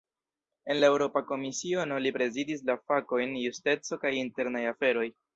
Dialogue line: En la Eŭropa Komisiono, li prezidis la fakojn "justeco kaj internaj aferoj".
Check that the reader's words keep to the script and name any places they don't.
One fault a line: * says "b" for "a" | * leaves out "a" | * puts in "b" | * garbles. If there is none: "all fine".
all fine